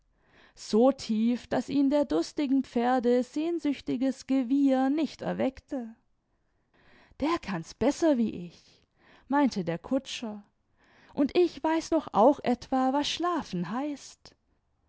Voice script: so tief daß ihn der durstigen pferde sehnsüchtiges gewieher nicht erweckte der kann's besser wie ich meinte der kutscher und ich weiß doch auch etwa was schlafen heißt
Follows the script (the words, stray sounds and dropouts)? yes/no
yes